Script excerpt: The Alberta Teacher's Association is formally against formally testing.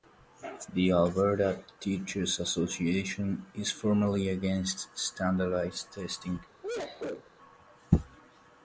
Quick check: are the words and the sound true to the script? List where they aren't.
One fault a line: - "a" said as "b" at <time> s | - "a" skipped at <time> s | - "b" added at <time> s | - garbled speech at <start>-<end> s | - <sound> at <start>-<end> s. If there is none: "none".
- "formally" said as "standardized" at 5.0 s
- sneeze at 6.6-7.3 s